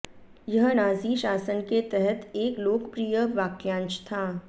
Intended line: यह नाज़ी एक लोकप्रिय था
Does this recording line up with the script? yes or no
no